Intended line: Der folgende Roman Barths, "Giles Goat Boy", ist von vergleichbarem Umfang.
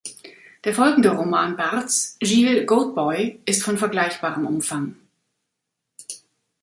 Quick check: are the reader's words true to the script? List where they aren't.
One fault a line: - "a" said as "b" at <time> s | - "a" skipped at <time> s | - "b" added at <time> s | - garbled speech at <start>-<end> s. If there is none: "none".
none